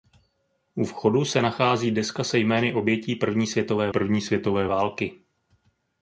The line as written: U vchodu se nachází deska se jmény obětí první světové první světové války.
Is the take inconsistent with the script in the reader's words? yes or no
no